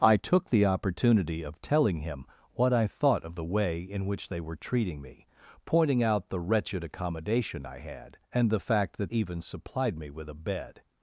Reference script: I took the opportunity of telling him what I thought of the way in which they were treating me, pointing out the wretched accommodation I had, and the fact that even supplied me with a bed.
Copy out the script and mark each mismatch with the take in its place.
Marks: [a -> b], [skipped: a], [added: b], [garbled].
I took the opportunity of telling him what I thought of the way in which they were treating me, pointing out the wretched accommodation I had, and the fact that even supplied me with a bed.